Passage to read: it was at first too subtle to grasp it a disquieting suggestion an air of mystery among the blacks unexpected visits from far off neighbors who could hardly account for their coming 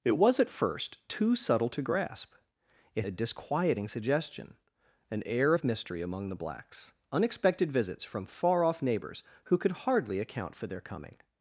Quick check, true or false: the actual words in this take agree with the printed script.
true